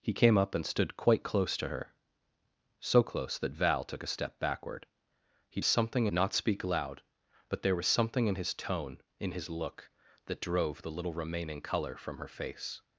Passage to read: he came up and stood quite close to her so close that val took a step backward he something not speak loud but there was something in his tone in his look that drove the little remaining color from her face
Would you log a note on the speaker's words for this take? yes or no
no